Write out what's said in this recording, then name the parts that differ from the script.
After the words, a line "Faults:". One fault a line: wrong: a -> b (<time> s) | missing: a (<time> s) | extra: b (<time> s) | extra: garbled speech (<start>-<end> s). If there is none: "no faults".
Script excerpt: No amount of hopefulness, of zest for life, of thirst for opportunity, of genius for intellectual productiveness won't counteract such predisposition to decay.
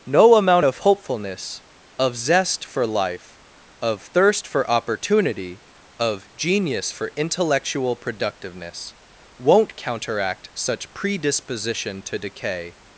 No amount of hopefulness, of zest for life, of thirst for opportunity, of genius for intellectual productiveness won't counteract such predisposition to decay.
Faults:
no faults